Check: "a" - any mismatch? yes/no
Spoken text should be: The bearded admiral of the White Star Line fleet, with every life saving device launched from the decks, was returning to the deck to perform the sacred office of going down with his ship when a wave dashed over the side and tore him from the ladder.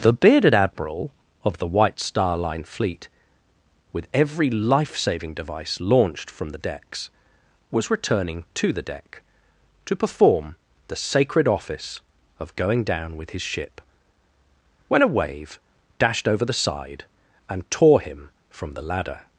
no